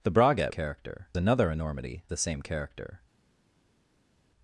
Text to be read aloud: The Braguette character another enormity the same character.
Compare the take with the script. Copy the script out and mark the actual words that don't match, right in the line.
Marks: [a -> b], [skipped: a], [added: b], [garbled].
The Braguette character another enormity the same character.